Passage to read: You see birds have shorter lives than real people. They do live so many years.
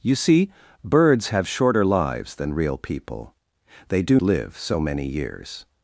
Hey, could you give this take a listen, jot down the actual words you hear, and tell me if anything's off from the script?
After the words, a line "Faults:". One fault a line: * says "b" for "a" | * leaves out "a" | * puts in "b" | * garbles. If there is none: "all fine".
You see birds have shorter lives than real people. They do live so many years.
Faults:
all fine